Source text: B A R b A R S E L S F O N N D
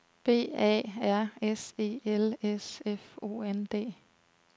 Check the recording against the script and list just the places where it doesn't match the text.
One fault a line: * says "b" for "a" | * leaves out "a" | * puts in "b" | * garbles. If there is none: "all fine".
* leaves out "b A R"
* leaves out "N"